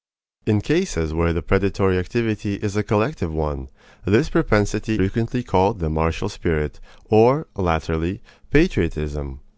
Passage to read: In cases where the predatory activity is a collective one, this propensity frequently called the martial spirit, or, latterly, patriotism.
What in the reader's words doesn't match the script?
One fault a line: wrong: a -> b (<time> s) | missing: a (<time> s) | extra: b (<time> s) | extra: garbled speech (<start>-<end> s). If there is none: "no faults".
no faults